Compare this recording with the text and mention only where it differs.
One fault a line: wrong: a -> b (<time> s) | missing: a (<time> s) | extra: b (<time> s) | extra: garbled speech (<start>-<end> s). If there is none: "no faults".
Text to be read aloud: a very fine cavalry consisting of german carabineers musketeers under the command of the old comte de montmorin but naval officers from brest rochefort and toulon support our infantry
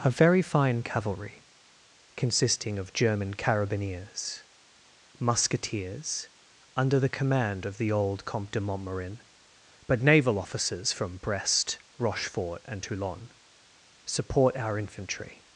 no faults